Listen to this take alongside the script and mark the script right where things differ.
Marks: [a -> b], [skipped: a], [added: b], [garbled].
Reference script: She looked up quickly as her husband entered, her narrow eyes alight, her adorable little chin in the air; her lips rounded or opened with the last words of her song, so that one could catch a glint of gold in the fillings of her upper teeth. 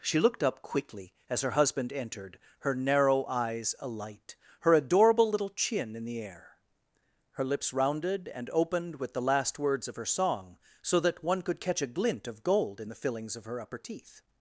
She looked up quickly as her husband entered, her narrow eyes alight, her adorable little chin in the air; her lips rounded [or -> and] opened with the last words of her song, so that one could catch a glint of gold in the fillings of her upper teeth.